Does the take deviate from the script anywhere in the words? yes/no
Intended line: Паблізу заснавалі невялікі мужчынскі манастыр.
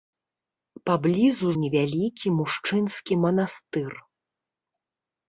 yes